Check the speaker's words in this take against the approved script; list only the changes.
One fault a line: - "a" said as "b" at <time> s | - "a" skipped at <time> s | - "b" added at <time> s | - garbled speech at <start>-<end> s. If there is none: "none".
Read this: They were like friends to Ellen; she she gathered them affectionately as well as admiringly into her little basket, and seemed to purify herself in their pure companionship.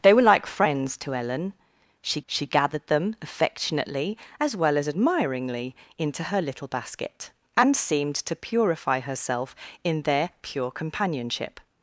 none